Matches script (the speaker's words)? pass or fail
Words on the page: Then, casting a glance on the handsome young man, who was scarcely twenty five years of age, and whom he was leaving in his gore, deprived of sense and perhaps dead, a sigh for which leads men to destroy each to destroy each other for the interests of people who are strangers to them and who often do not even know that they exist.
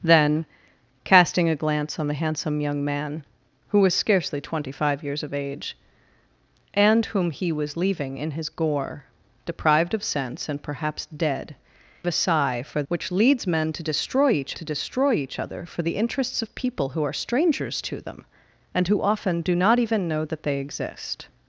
pass